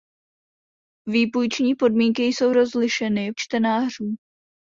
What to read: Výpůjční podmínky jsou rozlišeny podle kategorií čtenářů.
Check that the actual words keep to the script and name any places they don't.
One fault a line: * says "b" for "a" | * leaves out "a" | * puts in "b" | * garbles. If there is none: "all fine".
* leaves out "podle kategorií"